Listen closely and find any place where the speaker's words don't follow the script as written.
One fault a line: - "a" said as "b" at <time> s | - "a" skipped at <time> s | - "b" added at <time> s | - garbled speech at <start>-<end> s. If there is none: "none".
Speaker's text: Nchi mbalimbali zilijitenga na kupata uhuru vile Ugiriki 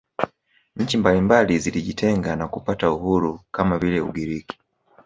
- "kama" added at 3.5 s